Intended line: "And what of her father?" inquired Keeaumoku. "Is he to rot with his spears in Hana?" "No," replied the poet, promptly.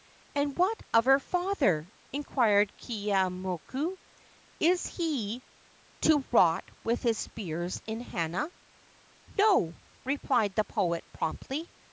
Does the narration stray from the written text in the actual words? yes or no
no